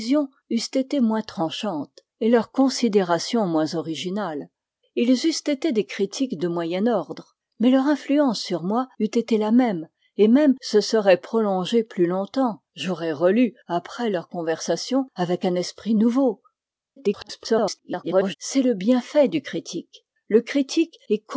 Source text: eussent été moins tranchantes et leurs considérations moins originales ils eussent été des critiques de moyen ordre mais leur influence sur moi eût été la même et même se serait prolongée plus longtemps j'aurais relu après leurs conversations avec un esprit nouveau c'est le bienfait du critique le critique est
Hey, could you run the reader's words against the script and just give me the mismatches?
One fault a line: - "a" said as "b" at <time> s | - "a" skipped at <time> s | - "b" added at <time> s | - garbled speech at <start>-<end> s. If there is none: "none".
- garbled speech at 17.0-18.4 s